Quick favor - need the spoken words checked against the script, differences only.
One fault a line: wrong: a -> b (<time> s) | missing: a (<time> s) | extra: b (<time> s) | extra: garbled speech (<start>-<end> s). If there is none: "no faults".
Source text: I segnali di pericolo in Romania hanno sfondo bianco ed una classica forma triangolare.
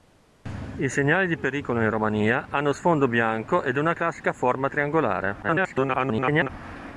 extra: garbled speech (5.4-6.5 s)